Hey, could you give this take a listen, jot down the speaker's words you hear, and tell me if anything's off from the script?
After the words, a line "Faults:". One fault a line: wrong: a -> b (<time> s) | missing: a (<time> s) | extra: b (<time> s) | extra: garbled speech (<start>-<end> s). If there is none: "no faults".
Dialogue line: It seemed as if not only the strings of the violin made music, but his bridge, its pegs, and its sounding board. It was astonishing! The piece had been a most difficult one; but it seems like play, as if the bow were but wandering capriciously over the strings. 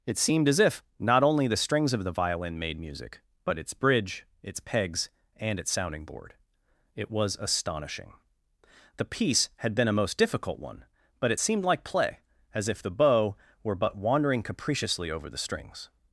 It seemed as if not only the strings of the violin made music, but its bridge, its pegs, and its sounding board. It was astonishing! The piece had been a most difficult one; but it seemed like play, as if the bow were but wandering capriciously over the strings.
Faults:
wrong: his -> its (3.6 s)
wrong: seems -> seemed (11.4 s)